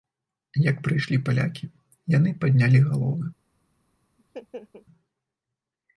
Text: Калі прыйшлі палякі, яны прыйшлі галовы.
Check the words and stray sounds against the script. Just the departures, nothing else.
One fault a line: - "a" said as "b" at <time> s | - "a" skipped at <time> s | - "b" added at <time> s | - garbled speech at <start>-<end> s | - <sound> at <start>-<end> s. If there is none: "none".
- "Калі" said as "Як" at 0.7 s
- "прыйшлі" said as "паднялі" at 2.4 s
- laugh at 4.2-4.9 s